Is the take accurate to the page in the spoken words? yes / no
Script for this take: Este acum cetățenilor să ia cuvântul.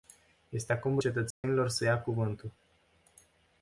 yes